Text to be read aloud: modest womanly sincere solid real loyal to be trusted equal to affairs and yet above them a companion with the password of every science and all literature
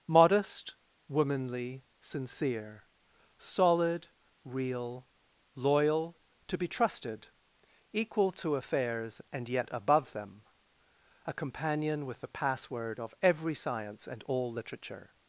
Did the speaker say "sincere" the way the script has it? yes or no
yes